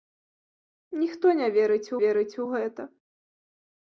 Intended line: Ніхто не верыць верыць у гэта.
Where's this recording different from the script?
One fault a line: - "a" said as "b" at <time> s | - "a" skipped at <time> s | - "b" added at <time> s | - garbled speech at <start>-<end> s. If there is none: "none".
none